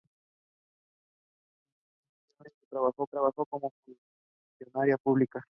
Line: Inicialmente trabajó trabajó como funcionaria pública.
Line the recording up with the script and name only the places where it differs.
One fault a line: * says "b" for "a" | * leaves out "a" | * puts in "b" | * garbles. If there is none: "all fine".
all fine